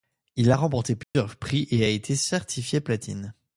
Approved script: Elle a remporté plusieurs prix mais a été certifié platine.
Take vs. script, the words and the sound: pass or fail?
fail